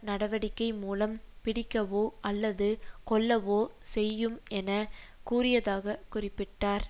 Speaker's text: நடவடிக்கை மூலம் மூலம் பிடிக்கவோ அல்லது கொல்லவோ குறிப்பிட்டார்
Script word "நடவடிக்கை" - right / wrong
right